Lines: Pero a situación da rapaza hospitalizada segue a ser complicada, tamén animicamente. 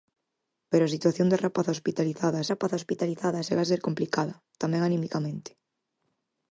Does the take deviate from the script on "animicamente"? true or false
false